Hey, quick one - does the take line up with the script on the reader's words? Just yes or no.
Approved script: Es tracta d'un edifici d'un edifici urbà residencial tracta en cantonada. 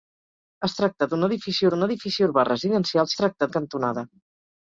yes